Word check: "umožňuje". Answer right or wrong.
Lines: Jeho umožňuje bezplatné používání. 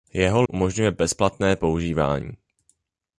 right